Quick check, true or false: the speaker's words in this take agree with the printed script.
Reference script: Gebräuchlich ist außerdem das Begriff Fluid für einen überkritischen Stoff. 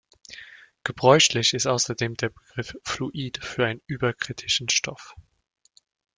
false